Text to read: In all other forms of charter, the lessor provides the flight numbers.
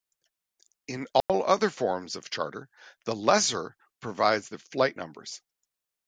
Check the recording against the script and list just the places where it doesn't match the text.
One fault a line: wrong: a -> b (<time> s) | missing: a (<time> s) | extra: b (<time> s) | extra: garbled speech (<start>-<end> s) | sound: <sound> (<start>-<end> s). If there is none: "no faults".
sound: dropout (1.2-1.3 s)